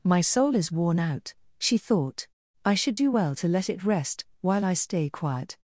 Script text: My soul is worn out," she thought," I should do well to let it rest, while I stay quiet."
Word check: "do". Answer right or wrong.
right